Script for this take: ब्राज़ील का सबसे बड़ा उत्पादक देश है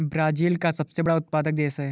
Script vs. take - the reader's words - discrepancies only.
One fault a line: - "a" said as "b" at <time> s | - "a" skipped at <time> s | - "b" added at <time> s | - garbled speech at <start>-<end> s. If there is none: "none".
none